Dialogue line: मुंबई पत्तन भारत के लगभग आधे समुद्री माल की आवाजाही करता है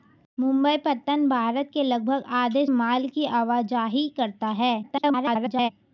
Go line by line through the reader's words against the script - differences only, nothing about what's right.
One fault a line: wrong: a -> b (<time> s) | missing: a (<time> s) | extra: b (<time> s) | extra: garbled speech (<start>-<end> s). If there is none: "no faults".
missing: समुद्री (2.6 s)
extra: garbled speech (4.8-5.7 s)